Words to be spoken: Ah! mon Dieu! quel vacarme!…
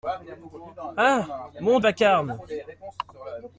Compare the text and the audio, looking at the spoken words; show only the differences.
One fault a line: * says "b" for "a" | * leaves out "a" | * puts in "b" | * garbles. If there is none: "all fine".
* leaves out "Dieu quel"